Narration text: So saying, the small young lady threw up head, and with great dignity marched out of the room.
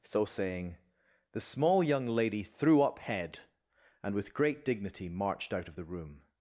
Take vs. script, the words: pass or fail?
pass